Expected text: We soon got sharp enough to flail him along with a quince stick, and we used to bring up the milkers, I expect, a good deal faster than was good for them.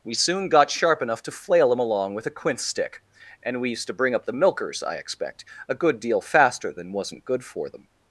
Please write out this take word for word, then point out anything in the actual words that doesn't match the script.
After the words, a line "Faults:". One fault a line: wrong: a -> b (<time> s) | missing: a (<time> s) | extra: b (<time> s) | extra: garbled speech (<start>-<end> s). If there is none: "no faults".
We soon got sharp enough to flail him along with a quince stick, and we used to bring up the milkers, I expect, a good deal faster than wasn't good for them.
Faults:
wrong: was -> wasn't (6.9 s)